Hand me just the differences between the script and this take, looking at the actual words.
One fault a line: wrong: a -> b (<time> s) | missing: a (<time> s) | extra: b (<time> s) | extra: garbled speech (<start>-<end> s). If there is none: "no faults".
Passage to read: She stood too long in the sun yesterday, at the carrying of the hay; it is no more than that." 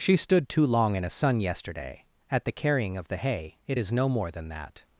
wrong: the -> a (1.0 s)